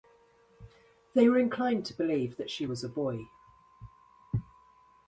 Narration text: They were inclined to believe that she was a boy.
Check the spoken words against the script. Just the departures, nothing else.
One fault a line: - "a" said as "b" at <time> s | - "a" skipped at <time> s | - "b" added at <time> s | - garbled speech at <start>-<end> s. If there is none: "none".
none